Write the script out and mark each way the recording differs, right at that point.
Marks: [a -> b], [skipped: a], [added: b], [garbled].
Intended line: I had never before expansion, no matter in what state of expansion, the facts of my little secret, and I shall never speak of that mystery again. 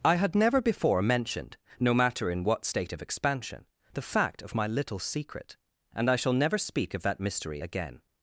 I had never before [expansion, -> mentioned] no matter in what state of expansion, the [facts -> fact] of my little secret, and I shall never speak of that mystery again.